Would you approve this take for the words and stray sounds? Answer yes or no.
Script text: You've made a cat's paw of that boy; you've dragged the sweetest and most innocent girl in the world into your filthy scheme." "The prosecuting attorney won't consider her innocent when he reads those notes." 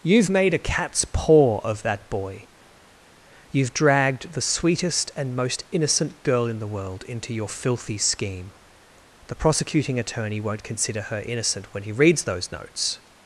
yes